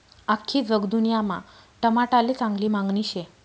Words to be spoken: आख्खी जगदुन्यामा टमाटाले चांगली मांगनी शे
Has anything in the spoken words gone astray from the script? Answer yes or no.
no